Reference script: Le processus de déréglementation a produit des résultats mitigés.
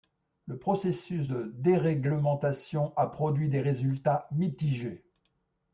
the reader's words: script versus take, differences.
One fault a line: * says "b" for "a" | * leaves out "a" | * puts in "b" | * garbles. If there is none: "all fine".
all fine